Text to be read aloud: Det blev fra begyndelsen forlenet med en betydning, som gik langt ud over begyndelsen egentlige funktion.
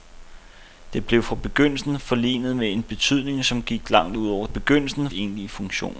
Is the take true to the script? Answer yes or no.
yes